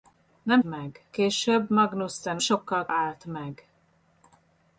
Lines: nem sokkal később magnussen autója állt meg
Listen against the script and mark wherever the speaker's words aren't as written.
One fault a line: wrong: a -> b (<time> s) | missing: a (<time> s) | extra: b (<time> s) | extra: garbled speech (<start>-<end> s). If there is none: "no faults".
wrong: sokkal -> meg (0.6 s)
wrong: autója -> sokkal (2.4 s)